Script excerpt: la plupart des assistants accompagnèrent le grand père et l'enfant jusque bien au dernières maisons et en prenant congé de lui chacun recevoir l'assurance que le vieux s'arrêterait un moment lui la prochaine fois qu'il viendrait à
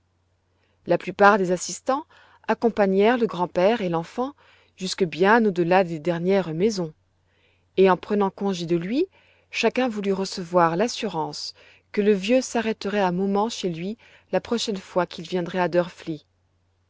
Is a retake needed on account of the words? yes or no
yes